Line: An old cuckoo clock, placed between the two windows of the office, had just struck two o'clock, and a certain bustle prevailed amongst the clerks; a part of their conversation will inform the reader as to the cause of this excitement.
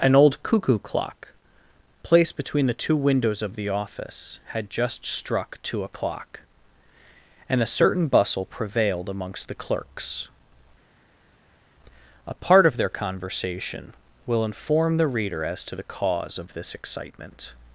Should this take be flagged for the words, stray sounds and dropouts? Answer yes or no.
no